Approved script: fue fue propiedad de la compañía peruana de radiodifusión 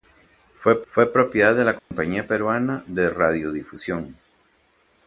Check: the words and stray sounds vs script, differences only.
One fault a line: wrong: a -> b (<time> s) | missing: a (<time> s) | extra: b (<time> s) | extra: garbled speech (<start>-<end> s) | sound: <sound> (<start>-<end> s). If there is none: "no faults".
sound: dropout (1.8-1.9 s)